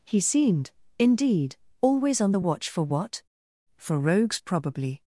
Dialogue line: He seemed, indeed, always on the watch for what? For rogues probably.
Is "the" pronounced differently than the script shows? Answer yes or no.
no